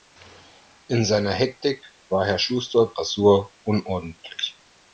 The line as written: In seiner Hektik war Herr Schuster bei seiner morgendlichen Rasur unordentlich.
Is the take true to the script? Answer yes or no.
no